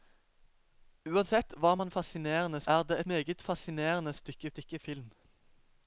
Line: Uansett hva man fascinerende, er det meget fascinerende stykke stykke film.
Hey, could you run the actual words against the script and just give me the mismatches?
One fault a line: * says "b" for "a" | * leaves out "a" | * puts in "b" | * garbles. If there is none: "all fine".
all fine